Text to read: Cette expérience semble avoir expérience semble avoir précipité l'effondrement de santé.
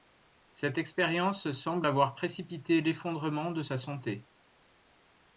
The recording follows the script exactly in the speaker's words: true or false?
false